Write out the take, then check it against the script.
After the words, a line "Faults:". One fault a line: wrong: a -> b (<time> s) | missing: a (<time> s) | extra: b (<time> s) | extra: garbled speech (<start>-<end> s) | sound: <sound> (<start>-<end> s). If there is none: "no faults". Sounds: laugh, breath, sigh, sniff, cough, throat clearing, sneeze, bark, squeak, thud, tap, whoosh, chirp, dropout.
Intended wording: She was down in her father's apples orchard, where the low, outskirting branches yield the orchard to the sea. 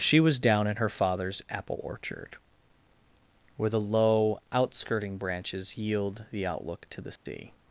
She was down in her father's apple orchard, where the low, outskirting branches yield the outlook to the sea.
Faults:
wrong: apples -> apple (1.5 s)
wrong: orchard -> outlook (6.4 s)
sound: dropout (7.2-7.3 s)